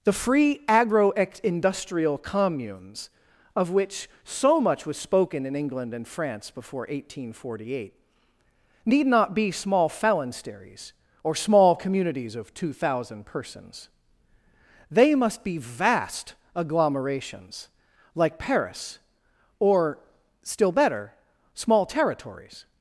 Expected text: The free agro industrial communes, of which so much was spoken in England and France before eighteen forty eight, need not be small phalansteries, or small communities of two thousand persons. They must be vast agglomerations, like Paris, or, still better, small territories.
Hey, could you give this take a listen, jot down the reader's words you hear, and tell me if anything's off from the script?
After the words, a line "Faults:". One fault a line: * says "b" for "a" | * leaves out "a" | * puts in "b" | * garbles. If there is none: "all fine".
The free agro industrial communes, of which so much was spoken in England and France before eighteen forty eight, need not be small phalansteries, or small communities of two thousand persons. They must be vast agglomerations, like Paris, or, still better, small territories.
Faults:
all fine